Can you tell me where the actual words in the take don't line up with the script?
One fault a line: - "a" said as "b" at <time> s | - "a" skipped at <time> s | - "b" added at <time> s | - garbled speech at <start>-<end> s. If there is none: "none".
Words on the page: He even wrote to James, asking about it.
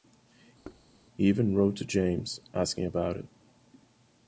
none